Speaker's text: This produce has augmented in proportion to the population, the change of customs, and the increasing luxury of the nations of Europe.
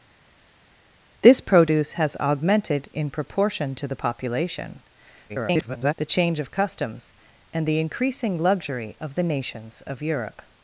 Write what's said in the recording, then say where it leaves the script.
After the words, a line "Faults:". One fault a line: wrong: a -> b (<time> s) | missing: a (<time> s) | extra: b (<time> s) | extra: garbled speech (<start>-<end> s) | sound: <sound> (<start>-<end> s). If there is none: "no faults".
This produce has augmented in proportion to the population, [garbled] the change of customs, and the increasing luxury of the nations of Europe.
Faults:
extra: garbled speech (5.3-5.9 s)